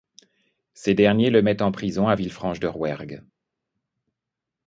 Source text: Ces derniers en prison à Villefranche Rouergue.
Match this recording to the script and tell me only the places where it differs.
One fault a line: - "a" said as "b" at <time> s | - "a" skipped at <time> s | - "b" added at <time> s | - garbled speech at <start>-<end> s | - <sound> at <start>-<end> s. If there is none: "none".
- "le mettent" added at 1.3 s
- "de" added at 2.6 s